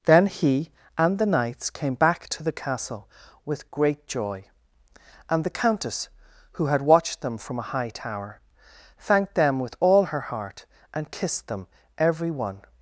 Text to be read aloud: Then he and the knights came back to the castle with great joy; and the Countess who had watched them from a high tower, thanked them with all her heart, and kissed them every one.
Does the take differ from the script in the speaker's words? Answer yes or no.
no